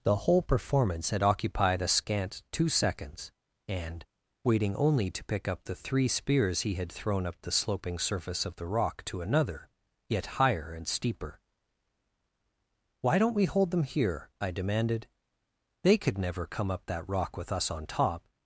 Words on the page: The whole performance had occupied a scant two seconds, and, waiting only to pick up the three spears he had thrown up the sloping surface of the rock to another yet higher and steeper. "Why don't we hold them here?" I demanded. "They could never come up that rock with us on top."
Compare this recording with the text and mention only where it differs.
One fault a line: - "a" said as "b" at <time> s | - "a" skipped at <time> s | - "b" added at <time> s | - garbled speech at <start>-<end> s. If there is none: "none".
none